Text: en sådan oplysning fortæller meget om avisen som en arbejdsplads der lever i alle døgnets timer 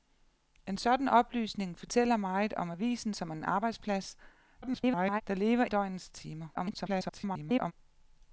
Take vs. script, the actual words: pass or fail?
fail